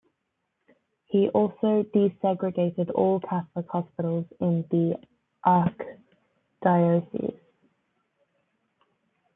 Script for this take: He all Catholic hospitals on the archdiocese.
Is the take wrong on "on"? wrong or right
wrong